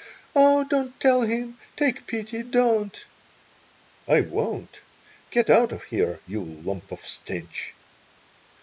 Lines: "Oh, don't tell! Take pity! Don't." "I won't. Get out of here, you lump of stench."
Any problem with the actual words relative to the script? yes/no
yes